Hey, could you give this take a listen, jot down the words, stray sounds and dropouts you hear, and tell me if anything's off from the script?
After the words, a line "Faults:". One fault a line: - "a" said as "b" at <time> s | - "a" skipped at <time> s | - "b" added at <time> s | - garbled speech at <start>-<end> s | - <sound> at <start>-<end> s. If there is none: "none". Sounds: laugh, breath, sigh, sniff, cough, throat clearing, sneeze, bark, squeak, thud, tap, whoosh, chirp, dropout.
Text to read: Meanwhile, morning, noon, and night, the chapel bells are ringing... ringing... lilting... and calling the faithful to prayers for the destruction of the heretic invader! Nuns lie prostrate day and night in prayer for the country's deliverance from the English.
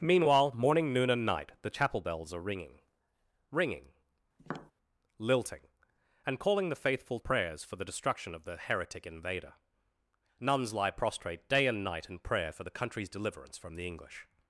Meanwhile, morning, noon, and night, the chapel bells are ringing... ringing... lilting... and calling the faithful prayers for the destruction of the heretic invader! Nuns lie prostrate day and night in prayer for the country's deliverance from the English.
Faults:
- tap at 4.4-4.7 s
- "to" skipped at 7.2 s